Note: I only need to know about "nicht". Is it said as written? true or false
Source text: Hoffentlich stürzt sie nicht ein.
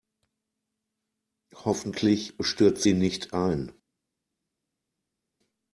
true